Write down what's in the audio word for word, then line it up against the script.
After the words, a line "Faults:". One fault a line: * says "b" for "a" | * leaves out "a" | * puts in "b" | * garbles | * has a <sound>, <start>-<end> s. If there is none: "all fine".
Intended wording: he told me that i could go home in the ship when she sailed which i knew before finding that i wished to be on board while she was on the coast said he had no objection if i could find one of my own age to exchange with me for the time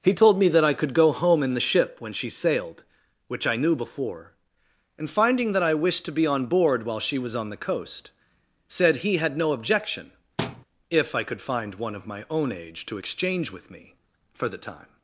he told me that i could go home in the ship when she sailed which i knew before and finding that i wished to be on board while she was on the coast said he had no objection if i could find one of my own age to exchange with me for the time
Faults:
* puts in "and"
* has a thud, 10.4-10.6 s